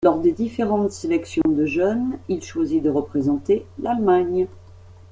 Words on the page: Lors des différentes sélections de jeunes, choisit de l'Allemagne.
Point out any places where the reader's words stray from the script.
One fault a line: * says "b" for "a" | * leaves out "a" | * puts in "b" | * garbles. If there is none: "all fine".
* puts in "il"
* puts in "représenter"